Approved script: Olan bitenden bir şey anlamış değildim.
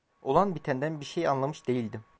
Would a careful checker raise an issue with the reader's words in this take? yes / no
no